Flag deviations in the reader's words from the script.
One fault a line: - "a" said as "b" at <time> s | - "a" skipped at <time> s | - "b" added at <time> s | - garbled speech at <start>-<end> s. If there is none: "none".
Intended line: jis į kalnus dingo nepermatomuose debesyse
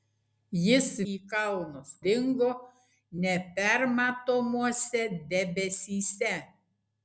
none